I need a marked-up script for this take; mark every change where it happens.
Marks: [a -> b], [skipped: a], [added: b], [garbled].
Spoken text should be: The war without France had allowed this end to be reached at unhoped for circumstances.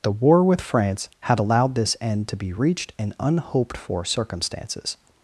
The war [without -> with] France had allowed this end to be reached [at -> in] unhoped for circumstances.